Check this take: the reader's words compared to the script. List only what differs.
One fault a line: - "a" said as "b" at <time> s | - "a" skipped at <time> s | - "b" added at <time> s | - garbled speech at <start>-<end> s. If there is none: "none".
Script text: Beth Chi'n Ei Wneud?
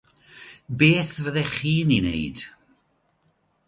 - "Fyddech" added at 1.2 s